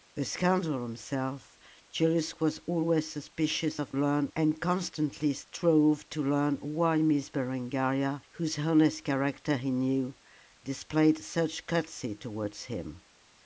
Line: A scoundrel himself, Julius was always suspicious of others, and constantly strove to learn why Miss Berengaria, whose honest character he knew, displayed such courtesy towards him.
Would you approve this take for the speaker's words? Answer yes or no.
no